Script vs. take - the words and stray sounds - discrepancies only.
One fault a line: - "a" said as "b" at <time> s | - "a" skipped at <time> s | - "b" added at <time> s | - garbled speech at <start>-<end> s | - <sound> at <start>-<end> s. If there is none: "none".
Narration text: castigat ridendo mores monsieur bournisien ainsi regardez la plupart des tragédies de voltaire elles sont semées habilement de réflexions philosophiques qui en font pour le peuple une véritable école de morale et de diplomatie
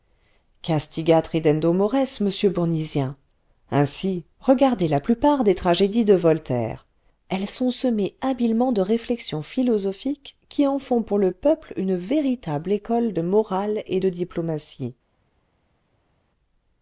none